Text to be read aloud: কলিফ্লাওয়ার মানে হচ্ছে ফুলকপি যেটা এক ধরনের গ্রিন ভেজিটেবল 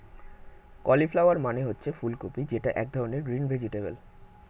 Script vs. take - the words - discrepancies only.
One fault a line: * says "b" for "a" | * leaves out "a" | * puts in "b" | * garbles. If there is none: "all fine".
all fine